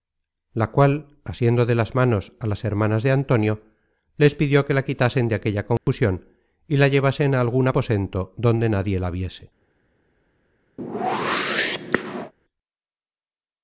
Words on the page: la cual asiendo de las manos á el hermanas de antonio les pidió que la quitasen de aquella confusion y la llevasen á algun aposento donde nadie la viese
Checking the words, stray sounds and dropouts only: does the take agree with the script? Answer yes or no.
no